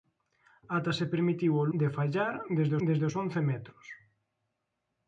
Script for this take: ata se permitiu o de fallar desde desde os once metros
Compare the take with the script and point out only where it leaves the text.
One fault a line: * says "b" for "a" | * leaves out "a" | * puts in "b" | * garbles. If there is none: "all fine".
all fine